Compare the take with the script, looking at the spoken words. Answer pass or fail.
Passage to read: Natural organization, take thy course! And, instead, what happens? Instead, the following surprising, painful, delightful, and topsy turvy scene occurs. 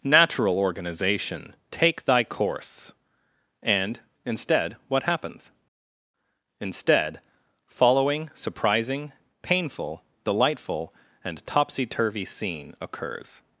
fail